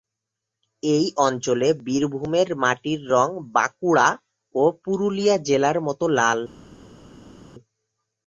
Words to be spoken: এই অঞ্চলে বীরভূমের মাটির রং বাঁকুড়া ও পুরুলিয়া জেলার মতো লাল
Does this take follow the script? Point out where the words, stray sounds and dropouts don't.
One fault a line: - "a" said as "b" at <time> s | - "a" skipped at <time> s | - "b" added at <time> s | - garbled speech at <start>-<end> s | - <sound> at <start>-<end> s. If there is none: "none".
none